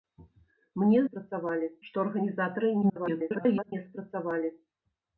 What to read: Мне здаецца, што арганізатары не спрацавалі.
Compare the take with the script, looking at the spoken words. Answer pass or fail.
fail